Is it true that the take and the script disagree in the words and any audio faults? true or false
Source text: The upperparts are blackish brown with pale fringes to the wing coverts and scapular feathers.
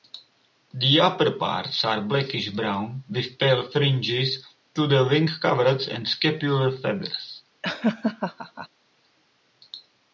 true